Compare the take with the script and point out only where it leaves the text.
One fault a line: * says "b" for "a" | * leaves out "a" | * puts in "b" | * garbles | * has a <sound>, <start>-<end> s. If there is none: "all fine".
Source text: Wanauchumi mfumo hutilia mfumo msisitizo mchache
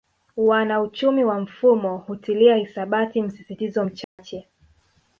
* puts in "wa"
* says "hisabati" for "mfumo"
* has a dropout, 4.0-4.2 s